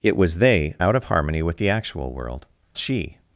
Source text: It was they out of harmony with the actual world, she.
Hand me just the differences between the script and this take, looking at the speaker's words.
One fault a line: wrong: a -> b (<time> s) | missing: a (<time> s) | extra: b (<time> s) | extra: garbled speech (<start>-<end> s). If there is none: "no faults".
no faults